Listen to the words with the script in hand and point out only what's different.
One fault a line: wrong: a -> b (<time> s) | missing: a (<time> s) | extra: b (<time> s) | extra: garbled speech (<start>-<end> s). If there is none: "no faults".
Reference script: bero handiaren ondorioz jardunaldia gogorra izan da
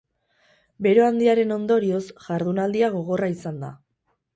no faults